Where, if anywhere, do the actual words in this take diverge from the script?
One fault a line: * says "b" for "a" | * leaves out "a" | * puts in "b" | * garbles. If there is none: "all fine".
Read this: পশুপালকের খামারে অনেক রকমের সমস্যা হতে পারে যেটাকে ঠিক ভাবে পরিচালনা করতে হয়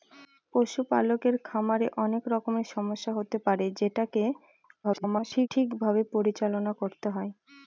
* garbles